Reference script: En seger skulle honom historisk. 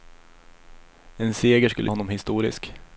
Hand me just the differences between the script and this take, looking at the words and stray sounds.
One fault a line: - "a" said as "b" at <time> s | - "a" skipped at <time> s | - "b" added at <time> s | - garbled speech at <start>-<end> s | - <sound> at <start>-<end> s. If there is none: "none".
none